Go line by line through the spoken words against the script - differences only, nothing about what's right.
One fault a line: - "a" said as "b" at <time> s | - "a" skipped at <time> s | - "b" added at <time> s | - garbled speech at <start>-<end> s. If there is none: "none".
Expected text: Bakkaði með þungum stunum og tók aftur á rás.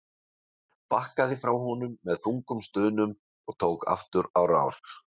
- "frá honum" added at 1.4 s